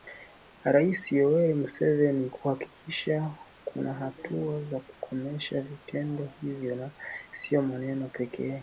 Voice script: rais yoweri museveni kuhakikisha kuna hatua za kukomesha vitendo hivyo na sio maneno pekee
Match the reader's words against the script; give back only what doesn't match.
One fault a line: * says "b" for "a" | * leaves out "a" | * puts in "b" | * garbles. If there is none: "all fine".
all fine